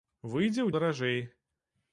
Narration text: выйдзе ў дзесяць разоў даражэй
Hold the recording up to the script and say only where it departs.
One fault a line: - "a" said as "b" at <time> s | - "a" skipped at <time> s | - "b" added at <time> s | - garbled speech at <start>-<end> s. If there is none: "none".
- "дзесяць разоў" skipped at 0.7 s